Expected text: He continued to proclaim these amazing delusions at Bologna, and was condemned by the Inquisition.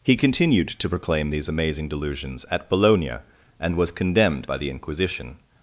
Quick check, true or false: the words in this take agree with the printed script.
true